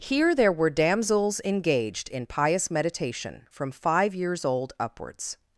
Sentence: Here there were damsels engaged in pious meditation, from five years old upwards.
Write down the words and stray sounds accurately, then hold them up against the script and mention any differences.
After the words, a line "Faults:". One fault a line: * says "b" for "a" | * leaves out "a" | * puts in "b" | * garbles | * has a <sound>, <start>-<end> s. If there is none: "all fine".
Here there were damsels engaged in pious meditation, from five years old upwards.
Faults:
all fine